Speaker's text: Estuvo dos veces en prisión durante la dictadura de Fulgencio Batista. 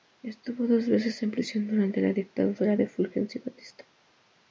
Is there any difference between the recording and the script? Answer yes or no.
no